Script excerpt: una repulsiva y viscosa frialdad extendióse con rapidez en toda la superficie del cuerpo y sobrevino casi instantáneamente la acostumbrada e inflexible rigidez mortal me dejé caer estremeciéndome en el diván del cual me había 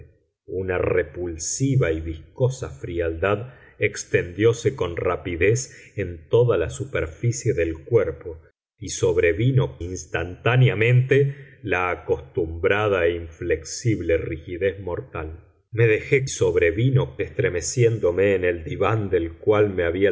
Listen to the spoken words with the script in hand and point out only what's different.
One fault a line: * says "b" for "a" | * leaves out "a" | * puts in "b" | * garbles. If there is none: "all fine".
* leaves out "casi"
* says "sobrevino" for "caer"